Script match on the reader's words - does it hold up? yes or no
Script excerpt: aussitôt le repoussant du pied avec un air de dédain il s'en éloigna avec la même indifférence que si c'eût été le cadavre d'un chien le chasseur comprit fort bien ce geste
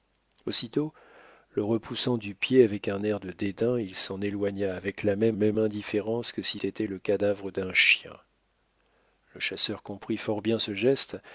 no